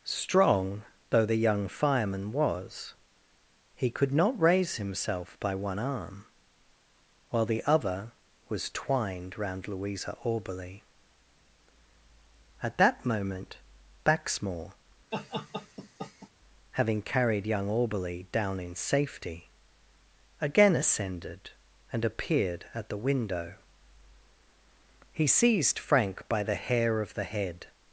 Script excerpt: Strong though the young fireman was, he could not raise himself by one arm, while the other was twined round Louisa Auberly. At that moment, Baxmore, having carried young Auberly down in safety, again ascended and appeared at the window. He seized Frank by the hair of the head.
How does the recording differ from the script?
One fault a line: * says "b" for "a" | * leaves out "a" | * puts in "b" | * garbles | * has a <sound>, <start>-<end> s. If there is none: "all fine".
* has a laugh, 15.1-16.3 s